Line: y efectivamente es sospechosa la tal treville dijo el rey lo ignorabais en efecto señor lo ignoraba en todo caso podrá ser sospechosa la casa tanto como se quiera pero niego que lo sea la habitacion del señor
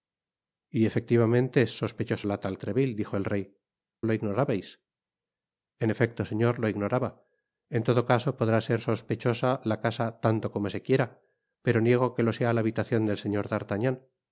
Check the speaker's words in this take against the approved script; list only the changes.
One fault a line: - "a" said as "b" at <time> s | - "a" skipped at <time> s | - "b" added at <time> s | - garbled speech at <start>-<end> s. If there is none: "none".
none